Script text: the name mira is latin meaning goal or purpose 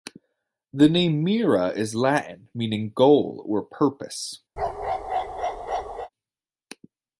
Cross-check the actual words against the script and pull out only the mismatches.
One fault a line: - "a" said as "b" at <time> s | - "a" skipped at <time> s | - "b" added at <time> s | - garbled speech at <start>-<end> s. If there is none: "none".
none